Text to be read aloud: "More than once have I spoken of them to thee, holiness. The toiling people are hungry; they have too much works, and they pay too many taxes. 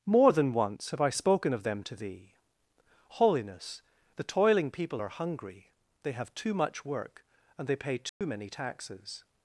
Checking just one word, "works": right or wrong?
wrong